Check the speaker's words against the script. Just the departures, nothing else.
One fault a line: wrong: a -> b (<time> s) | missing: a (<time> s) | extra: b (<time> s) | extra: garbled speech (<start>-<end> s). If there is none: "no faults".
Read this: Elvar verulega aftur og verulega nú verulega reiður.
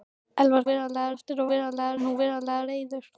no faults